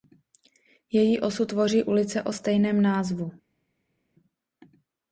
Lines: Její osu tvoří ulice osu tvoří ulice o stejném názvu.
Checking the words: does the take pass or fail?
fail